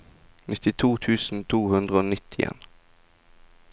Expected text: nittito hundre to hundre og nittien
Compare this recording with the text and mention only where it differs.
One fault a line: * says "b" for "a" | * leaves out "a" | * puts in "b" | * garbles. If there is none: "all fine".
* says "tusen" for "hundre"